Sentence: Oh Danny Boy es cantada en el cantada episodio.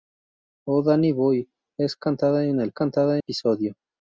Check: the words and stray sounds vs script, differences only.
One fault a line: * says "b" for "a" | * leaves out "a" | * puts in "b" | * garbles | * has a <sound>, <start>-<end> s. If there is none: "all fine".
all fine